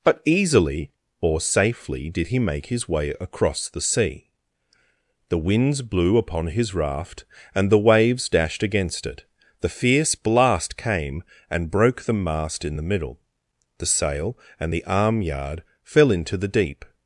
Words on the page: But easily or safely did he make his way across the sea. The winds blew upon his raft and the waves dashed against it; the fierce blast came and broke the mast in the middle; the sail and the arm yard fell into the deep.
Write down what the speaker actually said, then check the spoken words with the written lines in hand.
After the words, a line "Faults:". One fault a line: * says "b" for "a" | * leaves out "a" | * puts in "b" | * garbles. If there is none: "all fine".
But easily or safely did he make his way across the sea. The winds blew upon his raft and the waves dashed against it; the fierce blast came and broke the mast in the middle; the sail and the arm yard fell into the deep.
Faults:
all fine